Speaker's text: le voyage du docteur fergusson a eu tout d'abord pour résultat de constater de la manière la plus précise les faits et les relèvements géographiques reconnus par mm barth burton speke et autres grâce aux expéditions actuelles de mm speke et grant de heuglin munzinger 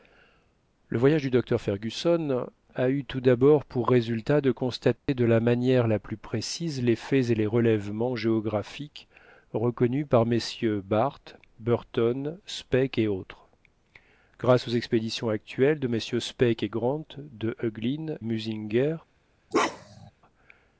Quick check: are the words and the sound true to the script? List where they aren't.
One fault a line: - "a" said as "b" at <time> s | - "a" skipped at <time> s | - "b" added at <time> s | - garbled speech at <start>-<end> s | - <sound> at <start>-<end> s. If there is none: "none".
- dropout at 5.0-5.1 s
- bark at 19.5-20.1 s